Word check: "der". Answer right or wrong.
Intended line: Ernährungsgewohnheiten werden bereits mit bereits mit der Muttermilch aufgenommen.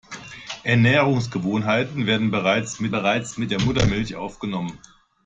right